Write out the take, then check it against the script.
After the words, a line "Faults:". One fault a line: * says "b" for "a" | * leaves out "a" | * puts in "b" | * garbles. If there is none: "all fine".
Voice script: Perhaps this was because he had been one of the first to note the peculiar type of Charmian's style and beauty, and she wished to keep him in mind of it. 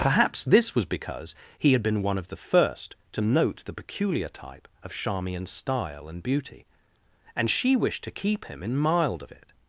Perhaps this was because he had been one of the first to note the peculiar type of Charmian's style and beauty, and she wished to keep him in mild of it.
Faults:
* says "mild" for "mind"